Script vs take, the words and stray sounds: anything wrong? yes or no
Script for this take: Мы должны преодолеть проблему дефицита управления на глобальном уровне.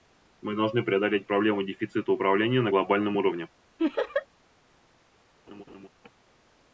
yes